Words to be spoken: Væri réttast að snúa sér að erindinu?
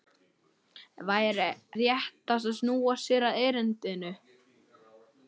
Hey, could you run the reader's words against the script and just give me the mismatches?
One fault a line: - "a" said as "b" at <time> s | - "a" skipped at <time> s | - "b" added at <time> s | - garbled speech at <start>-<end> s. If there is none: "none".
none